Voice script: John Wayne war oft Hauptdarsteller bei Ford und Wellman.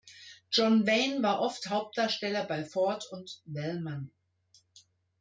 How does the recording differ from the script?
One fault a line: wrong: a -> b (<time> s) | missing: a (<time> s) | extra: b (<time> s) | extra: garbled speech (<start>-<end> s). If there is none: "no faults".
no faults